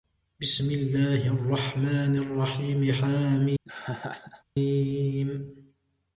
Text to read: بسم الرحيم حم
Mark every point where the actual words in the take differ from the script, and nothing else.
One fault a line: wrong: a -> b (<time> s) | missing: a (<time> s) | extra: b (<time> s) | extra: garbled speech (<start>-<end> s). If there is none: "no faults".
extra: الله الرحمن (0.7 s)